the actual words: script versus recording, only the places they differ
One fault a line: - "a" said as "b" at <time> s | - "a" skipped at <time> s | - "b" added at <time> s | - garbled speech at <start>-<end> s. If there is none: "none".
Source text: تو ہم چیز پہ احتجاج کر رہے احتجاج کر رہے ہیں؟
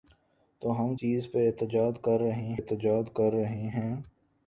none